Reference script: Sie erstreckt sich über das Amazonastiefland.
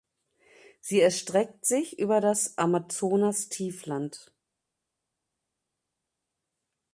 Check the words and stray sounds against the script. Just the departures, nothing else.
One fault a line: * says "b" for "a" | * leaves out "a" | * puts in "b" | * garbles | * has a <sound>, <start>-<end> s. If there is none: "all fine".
all fine